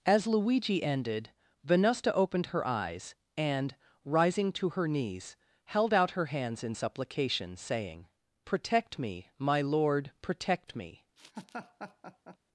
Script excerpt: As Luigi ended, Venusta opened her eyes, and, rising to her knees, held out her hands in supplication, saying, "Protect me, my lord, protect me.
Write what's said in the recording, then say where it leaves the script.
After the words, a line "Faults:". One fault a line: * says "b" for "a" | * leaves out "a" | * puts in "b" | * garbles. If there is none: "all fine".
As Luigi ended, Venusta opened her eyes, and, rising to her knees, held out her hands in supplication, saying, "Protect me, my lord, protect me.
Faults:
all fine